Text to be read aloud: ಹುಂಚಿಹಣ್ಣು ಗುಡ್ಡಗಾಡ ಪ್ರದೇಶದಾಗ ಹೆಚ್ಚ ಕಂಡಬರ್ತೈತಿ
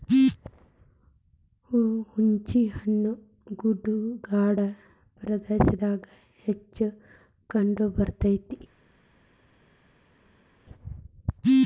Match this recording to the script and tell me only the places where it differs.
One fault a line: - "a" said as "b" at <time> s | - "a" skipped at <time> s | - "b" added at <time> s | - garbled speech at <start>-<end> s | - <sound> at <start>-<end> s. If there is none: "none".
none